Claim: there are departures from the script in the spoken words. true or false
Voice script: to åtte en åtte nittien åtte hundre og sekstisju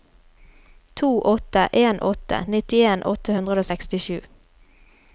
false